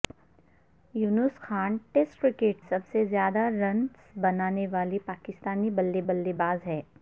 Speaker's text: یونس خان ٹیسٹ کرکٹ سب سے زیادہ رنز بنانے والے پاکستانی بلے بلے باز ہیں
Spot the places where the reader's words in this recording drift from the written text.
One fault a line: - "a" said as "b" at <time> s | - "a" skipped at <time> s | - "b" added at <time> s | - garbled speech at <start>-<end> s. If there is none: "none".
none